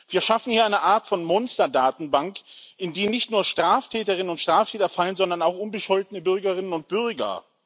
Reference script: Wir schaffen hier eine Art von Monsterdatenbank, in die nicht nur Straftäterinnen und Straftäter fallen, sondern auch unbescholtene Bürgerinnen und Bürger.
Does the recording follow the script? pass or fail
pass